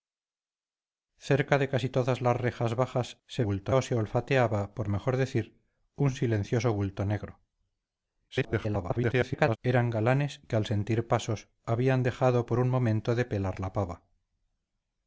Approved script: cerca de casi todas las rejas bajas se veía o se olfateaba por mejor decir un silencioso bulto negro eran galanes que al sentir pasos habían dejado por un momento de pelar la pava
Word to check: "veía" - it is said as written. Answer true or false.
false